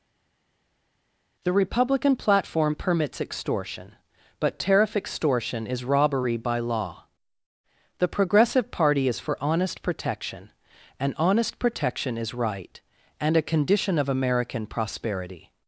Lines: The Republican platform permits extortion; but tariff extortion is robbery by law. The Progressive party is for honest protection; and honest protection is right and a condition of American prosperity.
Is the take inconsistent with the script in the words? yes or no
no